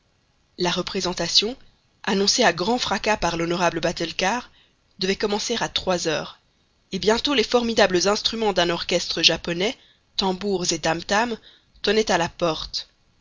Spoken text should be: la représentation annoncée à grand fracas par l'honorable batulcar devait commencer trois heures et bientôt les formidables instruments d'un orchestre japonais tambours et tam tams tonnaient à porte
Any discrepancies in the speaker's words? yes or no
yes